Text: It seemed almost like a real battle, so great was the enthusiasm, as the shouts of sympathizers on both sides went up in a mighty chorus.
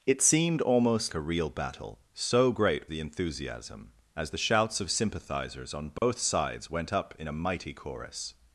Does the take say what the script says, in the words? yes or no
no